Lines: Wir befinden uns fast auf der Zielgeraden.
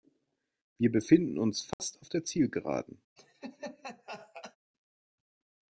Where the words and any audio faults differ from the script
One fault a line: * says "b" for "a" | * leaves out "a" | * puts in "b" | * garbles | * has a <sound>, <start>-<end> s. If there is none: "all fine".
* has a dropout, 1.7-1.8 s
* has a laugh, 3.2-4.6 s